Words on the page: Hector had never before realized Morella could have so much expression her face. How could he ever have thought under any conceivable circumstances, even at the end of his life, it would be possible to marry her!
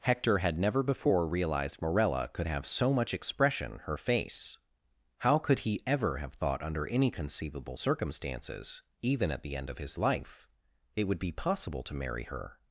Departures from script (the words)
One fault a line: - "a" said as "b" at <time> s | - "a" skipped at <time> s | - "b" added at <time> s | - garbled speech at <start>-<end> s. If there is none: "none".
none